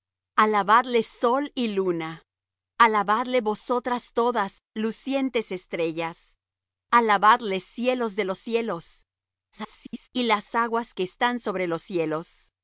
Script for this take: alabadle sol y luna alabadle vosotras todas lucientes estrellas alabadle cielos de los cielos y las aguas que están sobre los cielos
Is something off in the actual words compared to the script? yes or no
yes